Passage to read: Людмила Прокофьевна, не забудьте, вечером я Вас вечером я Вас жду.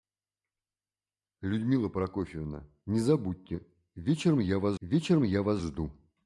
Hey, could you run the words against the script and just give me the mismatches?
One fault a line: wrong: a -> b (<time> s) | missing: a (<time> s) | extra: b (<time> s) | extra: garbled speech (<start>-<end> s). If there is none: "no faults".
no faults